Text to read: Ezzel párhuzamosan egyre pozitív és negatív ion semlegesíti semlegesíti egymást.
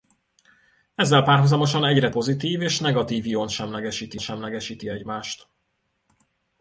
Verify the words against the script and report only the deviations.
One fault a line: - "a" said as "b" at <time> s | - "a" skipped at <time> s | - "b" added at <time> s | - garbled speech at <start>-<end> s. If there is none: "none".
none